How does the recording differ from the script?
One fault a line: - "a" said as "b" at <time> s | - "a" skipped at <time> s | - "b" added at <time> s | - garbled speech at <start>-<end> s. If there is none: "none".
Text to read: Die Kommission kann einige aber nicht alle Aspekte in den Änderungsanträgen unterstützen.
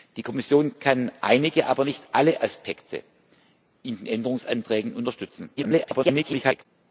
- garbled speech at 5.6-6.7 s